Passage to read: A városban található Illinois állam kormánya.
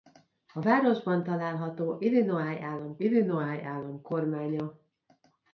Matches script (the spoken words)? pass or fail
fail